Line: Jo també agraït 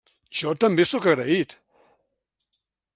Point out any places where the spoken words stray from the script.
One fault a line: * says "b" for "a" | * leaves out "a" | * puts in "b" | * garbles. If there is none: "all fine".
* puts in "sóc"